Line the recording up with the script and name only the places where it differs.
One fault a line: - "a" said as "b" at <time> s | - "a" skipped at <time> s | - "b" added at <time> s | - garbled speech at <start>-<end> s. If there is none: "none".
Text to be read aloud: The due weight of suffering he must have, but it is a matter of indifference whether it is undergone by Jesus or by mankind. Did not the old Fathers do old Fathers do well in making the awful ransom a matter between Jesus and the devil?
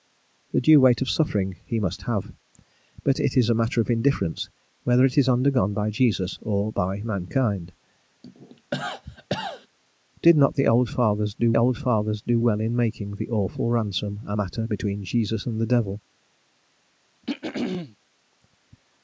none